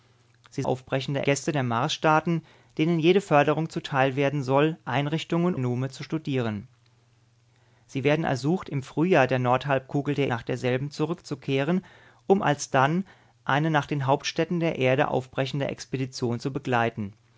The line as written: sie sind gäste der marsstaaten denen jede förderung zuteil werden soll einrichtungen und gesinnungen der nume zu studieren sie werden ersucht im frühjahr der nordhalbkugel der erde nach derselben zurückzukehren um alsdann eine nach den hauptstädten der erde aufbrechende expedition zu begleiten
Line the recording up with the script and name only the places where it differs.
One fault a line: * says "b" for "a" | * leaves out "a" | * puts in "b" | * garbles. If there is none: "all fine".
* says "aufbrechende" for "sind"
* leaves out "und gesinnungen der"
* leaves out "erde"